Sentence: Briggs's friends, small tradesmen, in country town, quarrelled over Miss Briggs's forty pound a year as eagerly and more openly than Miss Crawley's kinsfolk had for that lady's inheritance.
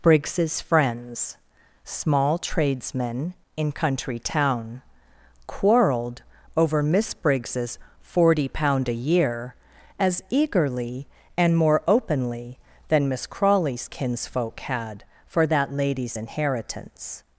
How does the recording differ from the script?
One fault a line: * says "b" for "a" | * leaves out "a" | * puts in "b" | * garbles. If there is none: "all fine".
all fine